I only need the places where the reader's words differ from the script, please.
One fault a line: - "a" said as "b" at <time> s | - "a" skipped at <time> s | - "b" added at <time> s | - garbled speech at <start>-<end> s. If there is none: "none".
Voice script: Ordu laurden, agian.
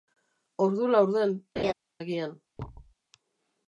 none